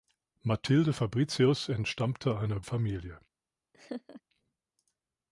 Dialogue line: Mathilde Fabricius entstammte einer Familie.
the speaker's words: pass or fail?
pass